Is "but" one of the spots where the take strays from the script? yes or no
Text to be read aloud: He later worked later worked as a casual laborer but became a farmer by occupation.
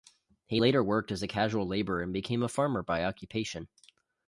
yes